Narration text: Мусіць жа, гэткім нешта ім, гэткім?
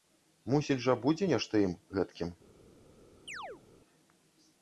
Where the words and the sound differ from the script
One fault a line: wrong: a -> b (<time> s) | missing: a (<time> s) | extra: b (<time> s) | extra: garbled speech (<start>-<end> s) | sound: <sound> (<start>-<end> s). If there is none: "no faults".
wrong: гэткім -> будзе (1.0 s)
sound: chirp (3.3-3.6 s)